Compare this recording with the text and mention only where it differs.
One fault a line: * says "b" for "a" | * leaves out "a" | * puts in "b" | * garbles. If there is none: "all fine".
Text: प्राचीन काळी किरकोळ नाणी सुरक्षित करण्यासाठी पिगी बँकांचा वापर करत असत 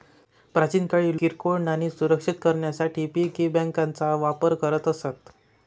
all fine